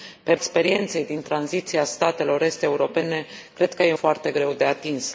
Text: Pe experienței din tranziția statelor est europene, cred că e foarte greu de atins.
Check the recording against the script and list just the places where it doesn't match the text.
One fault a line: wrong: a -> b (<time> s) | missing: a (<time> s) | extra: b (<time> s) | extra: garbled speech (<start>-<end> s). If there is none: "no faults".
no faults